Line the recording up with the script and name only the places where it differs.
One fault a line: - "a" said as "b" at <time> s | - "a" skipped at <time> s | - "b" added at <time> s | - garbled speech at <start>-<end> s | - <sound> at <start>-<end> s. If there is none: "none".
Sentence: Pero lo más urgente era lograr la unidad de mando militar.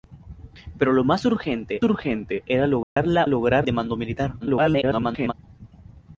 - "urgente" added at 1.8 s
- dropout at 2.8-3.0 s
- "unidad" said as "lograr" at 3.3 s
- garbled speech at 4.4-5.3 s